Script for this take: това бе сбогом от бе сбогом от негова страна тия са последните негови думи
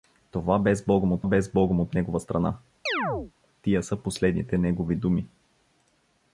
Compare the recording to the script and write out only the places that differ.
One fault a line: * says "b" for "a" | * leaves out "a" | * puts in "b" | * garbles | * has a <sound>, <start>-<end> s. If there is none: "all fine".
* has a chirp, 2.9-3.3 s